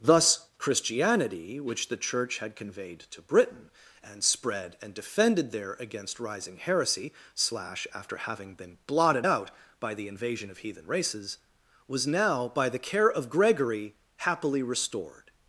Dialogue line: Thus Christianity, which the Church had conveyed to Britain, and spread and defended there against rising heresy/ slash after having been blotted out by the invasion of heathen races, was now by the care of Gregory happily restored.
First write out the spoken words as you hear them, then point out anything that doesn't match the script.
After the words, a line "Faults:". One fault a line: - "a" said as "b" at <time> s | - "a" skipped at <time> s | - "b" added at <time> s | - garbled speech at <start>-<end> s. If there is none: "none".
Thus Christianity, which the Church had conveyed to Britain, and spread and defended there against rising heresy/ slash after having been blotted out by the invasion of heathen races, was now by the care of Gregory happily restored.
Faults:
none